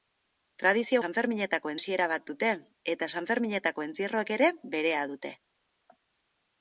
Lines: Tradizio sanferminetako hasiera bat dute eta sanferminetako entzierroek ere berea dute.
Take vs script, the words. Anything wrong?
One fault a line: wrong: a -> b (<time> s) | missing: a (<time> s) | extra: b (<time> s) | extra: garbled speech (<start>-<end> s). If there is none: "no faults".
no faults